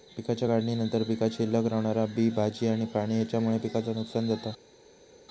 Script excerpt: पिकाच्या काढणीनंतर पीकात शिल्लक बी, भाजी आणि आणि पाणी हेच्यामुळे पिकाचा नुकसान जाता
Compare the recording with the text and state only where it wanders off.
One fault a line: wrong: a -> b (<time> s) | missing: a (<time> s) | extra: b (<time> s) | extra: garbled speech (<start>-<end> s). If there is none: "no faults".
extra: रवणारा (1.7 s)
missing: आणि (2.9 s)